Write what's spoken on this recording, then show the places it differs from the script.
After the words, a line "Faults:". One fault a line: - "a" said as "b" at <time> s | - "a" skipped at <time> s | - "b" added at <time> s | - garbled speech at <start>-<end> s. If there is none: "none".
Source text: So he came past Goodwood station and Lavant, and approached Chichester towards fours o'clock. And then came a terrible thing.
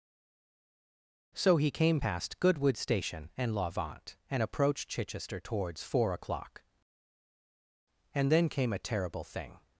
So he came past Goodwood station and Lavant, and approached Chichester towards four o'clock. And then came a terrible thing.
Faults:
- "fours" said as "four" at 5.8 s